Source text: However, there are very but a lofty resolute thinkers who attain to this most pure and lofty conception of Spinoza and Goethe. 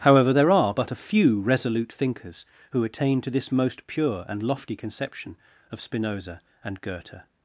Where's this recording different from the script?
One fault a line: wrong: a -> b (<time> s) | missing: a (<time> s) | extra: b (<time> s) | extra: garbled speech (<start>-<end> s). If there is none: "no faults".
missing: very (0.7 s)
wrong: lofty -> few (1.0 s)